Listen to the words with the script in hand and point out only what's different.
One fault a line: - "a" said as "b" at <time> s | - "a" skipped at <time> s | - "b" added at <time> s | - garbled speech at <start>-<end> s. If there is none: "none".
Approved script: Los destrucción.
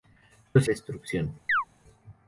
none